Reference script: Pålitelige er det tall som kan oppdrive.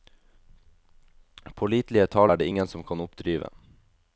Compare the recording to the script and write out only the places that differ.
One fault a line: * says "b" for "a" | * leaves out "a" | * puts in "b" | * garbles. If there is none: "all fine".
* puts in "tall"
* says "ingen" for "tall"